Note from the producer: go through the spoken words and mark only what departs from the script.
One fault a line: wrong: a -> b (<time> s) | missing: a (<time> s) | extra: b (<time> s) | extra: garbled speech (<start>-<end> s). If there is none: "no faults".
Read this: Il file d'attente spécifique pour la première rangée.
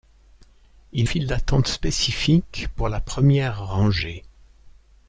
no faults